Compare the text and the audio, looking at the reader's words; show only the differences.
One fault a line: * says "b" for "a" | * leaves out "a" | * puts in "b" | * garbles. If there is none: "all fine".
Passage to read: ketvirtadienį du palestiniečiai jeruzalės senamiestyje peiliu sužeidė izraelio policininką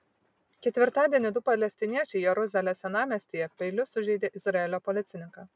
all fine